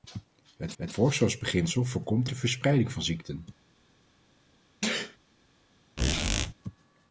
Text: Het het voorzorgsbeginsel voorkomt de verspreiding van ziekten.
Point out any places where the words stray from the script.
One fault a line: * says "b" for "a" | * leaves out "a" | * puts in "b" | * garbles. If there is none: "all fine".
all fine